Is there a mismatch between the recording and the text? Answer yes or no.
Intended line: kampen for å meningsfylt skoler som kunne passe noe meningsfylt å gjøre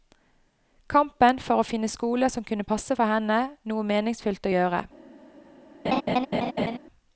yes